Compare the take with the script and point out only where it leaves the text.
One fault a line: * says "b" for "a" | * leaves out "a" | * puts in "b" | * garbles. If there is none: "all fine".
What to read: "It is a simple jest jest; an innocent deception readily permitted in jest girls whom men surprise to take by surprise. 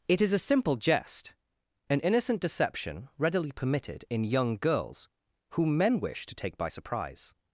* leaves out "jest"
* says "young" for "jest"
* says "wish" for "surprise"